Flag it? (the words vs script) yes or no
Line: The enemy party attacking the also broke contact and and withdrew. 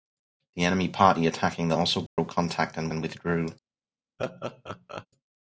no